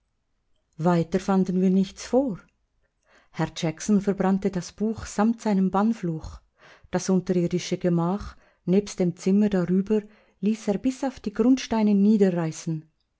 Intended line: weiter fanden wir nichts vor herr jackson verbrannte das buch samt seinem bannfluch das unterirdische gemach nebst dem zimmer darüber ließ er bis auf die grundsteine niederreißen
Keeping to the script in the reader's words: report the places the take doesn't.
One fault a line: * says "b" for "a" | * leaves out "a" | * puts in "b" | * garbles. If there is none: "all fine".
all fine